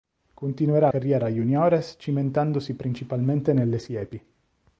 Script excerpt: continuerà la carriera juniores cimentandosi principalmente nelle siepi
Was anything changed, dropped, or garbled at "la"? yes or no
yes